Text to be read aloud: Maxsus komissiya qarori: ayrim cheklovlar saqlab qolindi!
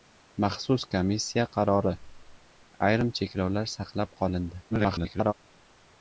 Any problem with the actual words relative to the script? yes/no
yes